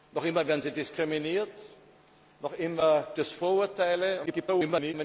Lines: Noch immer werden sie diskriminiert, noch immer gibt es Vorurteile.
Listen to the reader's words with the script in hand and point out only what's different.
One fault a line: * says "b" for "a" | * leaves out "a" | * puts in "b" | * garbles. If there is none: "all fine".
* leaves out "gibt"
* garbles